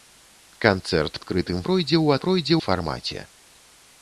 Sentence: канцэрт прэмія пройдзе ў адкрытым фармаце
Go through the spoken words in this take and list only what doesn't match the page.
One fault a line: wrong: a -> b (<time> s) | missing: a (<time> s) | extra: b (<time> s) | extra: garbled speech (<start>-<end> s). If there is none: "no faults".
wrong: прэмія -> адкрытым (1.2 s)
wrong: адкрытым -> пройдзе (2.3 s)